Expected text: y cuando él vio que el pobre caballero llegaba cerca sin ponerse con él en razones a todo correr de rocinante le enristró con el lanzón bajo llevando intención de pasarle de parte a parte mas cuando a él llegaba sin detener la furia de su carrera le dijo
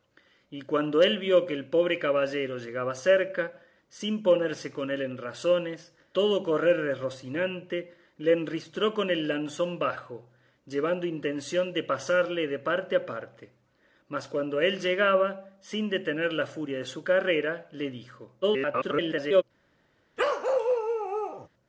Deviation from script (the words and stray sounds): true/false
true